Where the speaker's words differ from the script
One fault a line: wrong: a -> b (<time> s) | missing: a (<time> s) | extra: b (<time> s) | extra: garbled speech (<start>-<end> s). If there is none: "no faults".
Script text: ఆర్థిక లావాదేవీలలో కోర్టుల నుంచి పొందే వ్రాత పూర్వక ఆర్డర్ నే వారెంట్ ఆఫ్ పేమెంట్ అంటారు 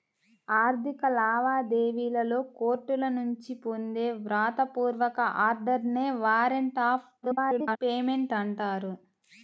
extra: garbled speech (7.2-7.8 s)